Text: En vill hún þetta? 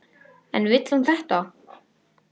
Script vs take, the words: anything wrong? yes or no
no